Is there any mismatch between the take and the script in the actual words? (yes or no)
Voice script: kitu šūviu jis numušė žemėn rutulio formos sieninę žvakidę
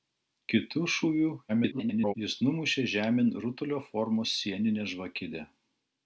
yes